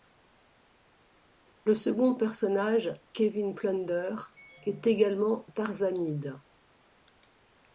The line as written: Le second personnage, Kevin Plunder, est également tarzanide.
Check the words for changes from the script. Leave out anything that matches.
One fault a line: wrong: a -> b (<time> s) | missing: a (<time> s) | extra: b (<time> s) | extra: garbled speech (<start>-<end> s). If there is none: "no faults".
no faults